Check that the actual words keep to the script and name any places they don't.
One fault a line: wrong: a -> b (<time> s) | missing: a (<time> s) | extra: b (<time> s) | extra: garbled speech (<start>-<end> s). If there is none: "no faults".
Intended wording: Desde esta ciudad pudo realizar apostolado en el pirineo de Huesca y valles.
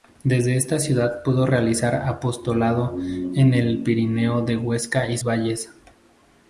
no faults